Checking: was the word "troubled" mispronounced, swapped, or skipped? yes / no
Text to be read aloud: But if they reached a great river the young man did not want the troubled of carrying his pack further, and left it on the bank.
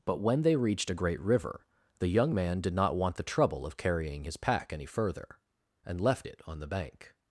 yes